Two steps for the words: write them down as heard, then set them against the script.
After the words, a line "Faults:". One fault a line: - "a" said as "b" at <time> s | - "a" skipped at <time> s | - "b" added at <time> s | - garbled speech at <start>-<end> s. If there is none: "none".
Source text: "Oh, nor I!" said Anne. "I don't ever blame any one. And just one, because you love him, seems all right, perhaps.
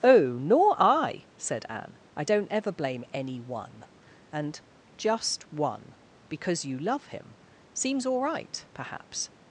"Oh, nor I!" said Anne. "I don't ever blame any one. And just one, because you love him, seems all right, perhaps.
Faults:
none